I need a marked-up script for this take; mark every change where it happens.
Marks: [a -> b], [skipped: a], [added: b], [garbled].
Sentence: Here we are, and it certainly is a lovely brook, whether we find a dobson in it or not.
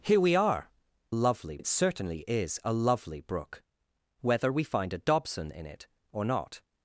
Here we are, [and -> lovely] it certainly is a lovely brook, whether we find a dobson in it or not.